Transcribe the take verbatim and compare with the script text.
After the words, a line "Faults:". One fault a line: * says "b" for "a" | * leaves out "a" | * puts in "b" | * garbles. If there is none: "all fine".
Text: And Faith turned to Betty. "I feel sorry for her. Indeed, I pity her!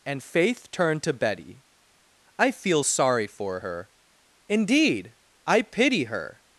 And Faith turned to Betty. "I feel sorry for her. Indeed, I pity her!
Faults:
all fine